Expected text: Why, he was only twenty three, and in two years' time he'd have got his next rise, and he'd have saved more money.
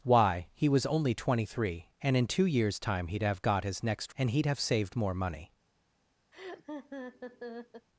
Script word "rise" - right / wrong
wrong